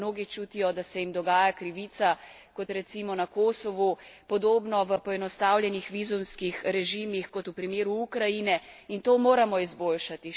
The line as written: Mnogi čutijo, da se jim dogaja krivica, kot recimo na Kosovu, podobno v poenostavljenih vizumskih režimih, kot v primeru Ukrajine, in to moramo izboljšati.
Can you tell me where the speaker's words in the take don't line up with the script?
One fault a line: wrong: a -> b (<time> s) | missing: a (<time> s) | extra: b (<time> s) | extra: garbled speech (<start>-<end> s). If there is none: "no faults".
no faults